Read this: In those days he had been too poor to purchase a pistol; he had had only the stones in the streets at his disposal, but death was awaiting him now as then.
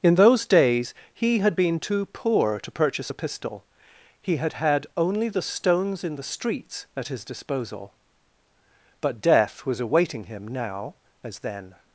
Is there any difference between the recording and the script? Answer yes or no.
no